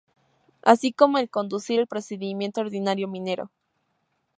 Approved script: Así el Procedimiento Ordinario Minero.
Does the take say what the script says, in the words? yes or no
no